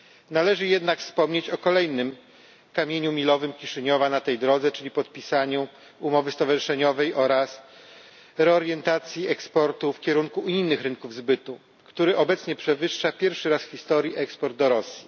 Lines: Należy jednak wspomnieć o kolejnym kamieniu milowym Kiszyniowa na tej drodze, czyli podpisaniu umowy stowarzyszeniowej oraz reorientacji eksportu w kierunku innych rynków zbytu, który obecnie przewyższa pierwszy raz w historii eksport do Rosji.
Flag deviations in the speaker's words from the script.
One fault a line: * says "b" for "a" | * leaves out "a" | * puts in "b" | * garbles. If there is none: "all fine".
all fine